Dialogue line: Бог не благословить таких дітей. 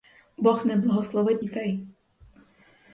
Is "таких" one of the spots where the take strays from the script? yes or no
yes